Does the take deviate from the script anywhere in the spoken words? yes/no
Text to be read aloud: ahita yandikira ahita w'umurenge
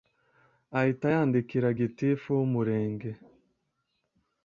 yes